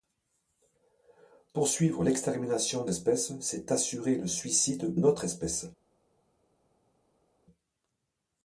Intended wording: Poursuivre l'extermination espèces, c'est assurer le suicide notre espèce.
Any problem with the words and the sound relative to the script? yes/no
no